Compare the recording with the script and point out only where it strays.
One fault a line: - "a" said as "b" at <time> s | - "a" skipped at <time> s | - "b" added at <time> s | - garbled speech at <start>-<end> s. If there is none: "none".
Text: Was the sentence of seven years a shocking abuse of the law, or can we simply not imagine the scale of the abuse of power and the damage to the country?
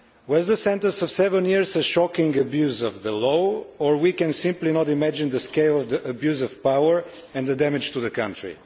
none